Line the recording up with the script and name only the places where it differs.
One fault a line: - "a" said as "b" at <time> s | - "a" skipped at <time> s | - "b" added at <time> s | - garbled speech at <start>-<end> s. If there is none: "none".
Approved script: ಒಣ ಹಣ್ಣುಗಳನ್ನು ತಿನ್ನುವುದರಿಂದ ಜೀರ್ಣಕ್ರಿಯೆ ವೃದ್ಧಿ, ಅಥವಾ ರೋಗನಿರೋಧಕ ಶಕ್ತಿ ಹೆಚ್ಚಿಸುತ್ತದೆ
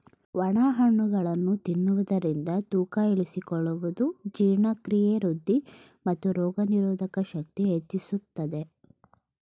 - "ತೂಕ ಇಳಿಸಿಕೊಳ್ಳುವುದು" added at 2.7 s
- "ಅಥವಾ" said as "ಮತ್ತು" at 6.1 s